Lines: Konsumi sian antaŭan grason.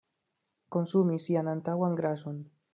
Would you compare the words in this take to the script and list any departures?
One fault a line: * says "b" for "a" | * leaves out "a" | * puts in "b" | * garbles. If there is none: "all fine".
all fine